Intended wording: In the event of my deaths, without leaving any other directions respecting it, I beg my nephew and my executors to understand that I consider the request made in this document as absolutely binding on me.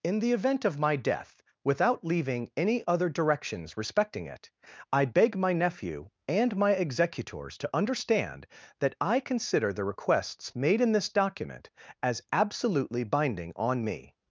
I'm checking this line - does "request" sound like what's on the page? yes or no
no